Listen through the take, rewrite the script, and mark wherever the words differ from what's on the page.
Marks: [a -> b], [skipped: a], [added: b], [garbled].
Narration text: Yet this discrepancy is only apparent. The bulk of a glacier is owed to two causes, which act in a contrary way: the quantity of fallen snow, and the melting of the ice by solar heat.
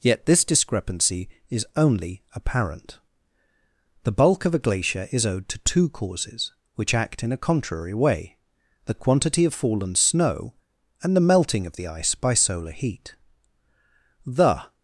Yet this discrepancy is only apparent. The bulk of a glacier is owed to two causes, which act in a contrary way: the quantity of fallen snow, and the melting of the ice by solar heat. [added: The]